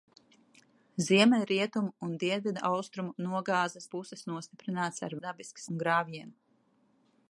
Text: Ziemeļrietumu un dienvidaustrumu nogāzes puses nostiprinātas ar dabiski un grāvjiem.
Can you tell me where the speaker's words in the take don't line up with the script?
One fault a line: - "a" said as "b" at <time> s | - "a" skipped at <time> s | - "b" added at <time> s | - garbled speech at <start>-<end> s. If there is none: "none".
none